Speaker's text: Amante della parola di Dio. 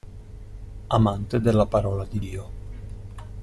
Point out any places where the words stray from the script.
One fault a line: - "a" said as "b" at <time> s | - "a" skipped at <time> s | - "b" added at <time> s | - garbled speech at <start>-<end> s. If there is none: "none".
none